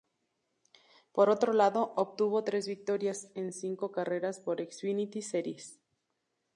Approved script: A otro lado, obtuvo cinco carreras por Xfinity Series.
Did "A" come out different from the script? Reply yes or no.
yes